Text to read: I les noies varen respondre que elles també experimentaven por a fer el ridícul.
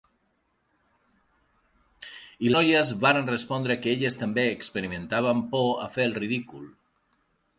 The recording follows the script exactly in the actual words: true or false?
false